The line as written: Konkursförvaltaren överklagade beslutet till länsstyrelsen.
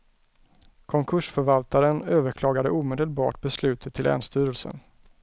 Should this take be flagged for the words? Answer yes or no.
yes